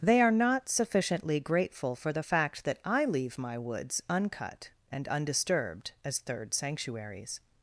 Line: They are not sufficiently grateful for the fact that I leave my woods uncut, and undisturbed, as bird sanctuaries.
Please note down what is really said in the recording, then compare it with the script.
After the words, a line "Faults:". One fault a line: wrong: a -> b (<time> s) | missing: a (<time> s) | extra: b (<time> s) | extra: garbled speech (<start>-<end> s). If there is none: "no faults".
They are not sufficiently grateful for the fact that I leave my woods uncut, and undisturbed, as third sanctuaries.
Faults:
wrong: bird -> third (6.2 s)